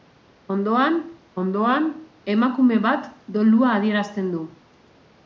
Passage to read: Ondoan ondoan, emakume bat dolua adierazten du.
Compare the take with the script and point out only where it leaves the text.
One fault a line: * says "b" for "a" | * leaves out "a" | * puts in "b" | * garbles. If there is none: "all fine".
all fine